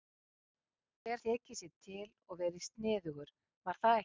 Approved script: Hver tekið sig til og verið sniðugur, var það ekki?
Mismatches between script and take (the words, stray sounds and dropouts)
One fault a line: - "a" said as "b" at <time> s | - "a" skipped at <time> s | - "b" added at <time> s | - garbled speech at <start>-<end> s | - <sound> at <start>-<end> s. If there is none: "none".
none